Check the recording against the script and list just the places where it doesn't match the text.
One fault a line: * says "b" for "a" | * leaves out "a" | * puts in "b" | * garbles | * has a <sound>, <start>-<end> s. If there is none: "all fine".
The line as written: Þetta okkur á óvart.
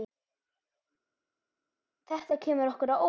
* puts in "kemur"